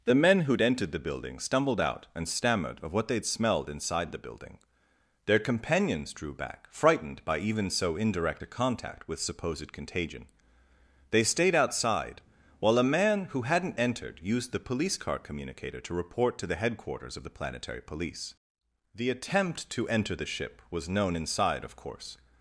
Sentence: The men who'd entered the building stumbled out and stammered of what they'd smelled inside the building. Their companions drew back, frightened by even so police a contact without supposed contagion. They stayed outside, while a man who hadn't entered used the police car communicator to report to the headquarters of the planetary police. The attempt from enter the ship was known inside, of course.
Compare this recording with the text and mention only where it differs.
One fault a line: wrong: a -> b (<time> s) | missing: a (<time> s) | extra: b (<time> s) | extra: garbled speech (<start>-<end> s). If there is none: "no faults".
wrong: police -> indirect (8.0 s)
wrong: without -> with (9.1 s)
wrong: from -> to (19.7 s)